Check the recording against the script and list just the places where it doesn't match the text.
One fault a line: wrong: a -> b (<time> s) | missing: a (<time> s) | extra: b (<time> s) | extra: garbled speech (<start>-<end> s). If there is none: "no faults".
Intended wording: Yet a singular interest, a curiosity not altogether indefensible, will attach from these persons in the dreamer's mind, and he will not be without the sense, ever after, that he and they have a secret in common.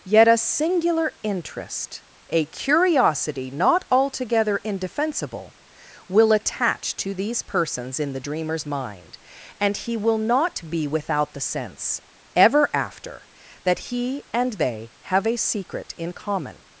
wrong: from -> to (7.0 s)